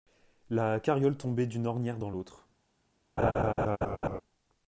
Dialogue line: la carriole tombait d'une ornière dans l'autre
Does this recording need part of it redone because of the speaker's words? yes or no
no